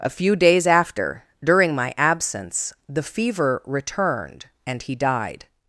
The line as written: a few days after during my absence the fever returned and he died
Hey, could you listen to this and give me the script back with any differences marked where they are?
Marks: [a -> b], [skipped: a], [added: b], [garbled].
a few days after during my absence the fever returned and he died